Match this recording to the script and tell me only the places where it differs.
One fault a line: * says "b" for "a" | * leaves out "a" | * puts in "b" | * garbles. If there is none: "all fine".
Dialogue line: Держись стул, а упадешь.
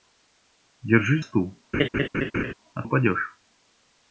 all fine